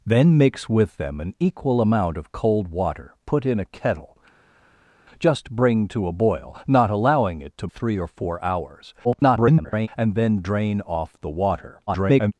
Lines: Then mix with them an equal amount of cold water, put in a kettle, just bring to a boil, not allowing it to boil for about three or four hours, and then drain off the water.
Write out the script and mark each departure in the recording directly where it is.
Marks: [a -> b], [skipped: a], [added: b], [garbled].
Then mix with them an equal amount of cold water, put in a kettle, just bring to a boil, not allowing it to [skipped: boil for about] three or four hours, [garbled] and then drain off the water. [garbled]